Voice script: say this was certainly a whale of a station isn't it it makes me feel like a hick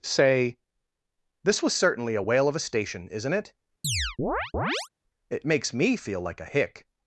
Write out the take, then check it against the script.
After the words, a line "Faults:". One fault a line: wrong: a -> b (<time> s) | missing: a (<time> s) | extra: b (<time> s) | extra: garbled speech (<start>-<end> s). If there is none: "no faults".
say this was certainly a whale of a station isn't it it makes me feel like a hick
Faults:
no faults